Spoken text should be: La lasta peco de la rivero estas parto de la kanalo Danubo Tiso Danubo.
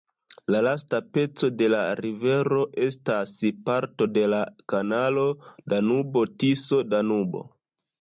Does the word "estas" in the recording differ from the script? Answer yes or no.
no